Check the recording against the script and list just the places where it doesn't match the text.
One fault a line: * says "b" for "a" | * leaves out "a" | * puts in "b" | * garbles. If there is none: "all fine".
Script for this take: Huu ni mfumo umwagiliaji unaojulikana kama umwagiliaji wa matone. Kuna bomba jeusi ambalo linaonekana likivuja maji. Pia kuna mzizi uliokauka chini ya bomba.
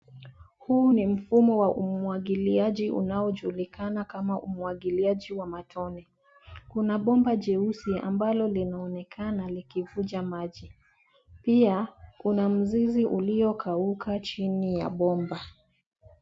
* puts in "wa"